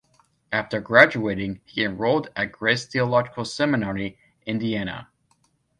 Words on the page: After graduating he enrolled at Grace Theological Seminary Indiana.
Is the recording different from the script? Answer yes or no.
no